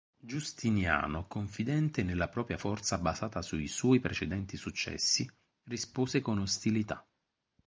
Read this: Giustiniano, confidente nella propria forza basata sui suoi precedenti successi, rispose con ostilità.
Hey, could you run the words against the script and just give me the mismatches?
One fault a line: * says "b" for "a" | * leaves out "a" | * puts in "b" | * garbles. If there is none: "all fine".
all fine